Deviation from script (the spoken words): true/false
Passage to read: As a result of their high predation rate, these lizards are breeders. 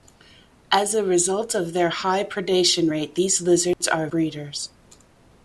false